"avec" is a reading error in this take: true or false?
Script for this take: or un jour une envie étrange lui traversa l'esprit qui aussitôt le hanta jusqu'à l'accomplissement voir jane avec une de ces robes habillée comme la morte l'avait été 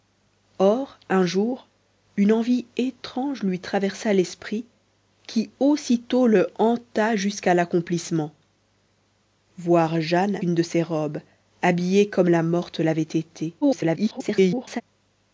true